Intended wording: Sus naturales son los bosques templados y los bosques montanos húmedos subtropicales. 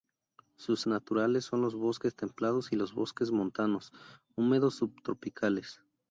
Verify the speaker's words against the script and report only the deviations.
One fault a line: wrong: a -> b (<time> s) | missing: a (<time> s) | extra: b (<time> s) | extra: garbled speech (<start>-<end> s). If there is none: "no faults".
no faults